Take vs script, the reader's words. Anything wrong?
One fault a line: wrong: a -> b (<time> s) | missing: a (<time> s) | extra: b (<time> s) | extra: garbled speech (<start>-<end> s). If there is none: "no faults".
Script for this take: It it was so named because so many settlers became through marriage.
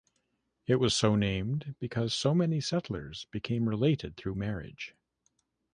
missing: it (0.8 s)
extra: related (3.7 s)